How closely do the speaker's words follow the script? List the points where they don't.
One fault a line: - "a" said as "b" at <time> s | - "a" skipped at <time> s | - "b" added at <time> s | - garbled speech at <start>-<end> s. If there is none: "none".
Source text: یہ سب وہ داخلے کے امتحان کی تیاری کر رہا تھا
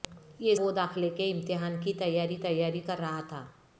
- "سب" skipped at 0.6 s
- "تیاری" added at 2.4 s